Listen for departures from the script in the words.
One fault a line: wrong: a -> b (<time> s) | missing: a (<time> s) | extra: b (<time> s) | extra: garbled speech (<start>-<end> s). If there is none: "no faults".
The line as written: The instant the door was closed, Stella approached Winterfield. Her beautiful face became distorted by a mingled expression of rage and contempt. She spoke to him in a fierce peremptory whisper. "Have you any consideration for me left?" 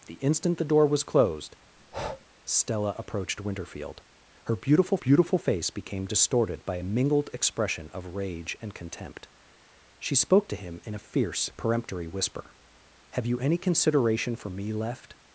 extra: beautiful (5.0 s)